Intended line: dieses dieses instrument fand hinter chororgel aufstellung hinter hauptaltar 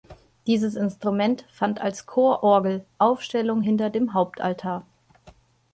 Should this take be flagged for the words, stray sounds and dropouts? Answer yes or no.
yes